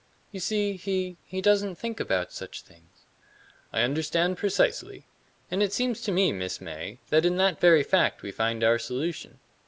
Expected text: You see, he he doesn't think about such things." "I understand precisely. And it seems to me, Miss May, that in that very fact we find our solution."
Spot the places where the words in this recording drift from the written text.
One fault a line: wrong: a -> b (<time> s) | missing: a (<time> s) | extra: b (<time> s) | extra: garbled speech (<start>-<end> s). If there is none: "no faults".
no faults